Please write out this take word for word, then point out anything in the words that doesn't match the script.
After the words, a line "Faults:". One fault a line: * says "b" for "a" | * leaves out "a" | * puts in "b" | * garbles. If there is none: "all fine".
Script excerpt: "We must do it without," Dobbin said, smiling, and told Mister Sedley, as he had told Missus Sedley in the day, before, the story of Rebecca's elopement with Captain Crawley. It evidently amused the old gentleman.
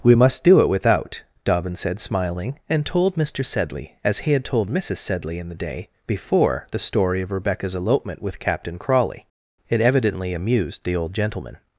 "We must do it without," Dobbin said, smiling, and told Mister Sedley, as he had told Missus Sedley in the day, before, the story of Rebecca's elopement with Captain Crawley. It evidently amused the old gentleman.
Faults:
all fine